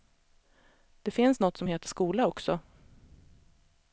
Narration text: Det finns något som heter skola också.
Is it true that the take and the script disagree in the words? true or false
false